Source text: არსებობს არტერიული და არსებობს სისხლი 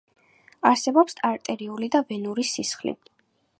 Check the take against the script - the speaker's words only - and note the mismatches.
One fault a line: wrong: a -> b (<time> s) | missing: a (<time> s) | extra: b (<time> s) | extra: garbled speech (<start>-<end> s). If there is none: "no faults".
wrong: არსებობს -> ვენური (2.1 s)